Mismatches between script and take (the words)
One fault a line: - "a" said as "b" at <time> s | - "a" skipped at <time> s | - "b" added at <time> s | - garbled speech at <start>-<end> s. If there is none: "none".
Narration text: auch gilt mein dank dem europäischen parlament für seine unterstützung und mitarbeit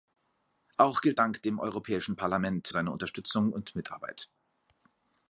- "mein" skipped at 1.2 s
- "für" skipped at 2.7 s